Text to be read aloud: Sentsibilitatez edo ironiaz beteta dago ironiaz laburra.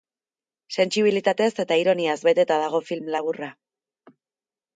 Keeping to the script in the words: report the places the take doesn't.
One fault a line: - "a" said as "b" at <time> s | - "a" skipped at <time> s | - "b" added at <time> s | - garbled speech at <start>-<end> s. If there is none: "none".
- "edo" said as "eta" at 1.6 s
- "ironiaz" said as "film" at 2.9 s